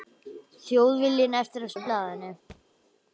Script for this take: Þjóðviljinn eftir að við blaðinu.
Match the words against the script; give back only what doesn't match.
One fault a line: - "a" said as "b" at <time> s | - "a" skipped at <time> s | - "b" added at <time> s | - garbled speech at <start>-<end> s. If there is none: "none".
none